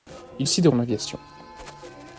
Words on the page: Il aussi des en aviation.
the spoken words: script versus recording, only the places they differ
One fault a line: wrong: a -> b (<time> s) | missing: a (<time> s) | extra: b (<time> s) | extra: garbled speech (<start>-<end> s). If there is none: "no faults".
no faults